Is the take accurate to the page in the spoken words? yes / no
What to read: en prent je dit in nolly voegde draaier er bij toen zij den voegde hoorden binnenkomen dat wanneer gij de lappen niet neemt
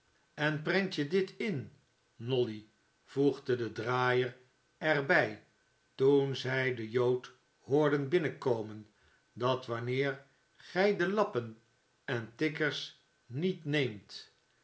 no